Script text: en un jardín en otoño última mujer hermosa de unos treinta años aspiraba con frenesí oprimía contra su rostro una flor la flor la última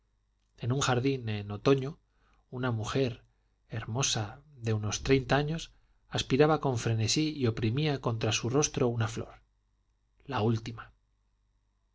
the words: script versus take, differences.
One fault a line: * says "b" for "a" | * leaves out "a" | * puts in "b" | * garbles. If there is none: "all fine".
* says "una" for "última"
* puts in "y"
* leaves out "flor la"